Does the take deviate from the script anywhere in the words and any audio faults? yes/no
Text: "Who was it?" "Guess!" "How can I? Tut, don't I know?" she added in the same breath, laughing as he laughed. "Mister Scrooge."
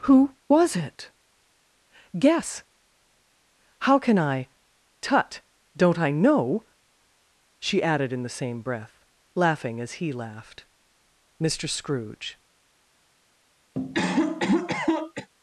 yes